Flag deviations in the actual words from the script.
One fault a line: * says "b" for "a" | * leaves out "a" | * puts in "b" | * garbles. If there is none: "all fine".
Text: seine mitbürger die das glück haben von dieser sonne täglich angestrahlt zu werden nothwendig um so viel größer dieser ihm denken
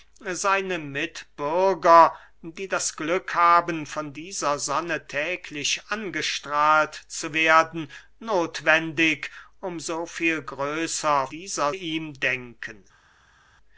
all fine